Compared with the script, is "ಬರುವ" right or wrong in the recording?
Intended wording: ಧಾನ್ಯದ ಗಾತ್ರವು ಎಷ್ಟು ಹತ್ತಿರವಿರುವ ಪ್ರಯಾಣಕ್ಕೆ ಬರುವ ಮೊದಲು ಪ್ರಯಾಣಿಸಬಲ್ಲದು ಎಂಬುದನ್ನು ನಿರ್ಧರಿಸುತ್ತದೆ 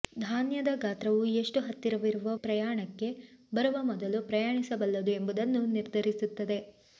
right